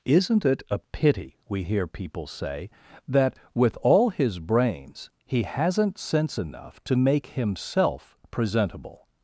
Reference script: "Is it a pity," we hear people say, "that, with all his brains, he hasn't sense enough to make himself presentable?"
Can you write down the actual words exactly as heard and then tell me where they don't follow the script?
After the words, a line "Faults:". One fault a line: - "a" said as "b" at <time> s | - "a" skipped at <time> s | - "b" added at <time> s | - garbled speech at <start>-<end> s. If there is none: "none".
"Isn't it a pity," we hear people say, "that, with all his brains, he hasn't sense enough to make himself presentable?"
Faults:
- "Is" said as "Isn't" at 0.1 s